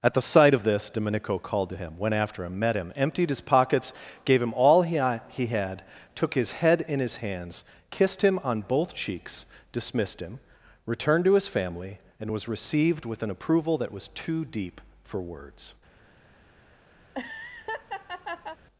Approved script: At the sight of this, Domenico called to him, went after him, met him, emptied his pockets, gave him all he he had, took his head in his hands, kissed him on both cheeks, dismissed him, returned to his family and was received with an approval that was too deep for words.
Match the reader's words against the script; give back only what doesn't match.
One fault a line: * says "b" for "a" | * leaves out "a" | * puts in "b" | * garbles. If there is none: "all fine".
all fine